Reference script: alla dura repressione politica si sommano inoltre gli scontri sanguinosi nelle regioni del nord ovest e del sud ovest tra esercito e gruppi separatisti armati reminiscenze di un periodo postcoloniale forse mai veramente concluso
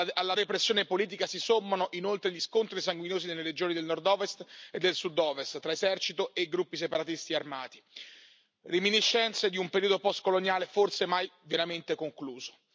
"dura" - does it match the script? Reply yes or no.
no